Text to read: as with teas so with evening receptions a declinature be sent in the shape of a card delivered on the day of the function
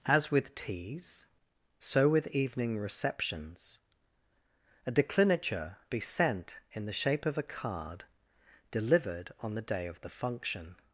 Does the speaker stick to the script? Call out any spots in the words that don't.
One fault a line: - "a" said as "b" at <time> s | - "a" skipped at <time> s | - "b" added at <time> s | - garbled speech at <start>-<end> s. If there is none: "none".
none